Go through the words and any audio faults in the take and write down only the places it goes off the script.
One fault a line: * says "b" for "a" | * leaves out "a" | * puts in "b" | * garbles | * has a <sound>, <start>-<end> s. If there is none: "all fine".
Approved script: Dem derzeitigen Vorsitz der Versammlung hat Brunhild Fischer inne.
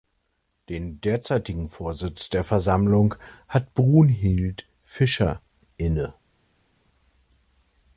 * says "Den" for "Dem"